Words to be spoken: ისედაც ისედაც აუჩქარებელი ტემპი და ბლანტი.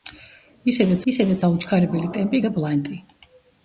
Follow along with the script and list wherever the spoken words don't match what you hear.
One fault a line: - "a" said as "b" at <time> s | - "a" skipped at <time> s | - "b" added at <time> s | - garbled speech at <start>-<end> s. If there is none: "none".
none